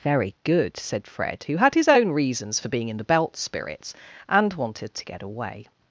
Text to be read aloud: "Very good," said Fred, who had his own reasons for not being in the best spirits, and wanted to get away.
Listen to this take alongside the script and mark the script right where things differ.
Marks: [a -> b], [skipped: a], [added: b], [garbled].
"Very good," said Fred, who had his own reasons for [skipped: not] being in the [best -> belt] spirits, and wanted to get away.